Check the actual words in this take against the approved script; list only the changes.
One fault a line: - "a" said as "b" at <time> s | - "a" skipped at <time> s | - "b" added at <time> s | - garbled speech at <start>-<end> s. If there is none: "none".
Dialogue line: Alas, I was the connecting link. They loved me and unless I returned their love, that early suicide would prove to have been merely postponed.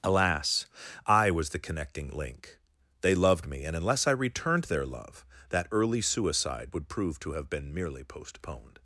none